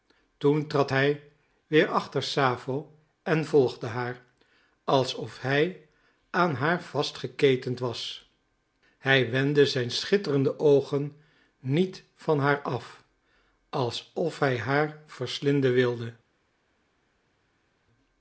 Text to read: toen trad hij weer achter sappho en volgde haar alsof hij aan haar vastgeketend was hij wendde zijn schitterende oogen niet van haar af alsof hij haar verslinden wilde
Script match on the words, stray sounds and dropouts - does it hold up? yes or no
yes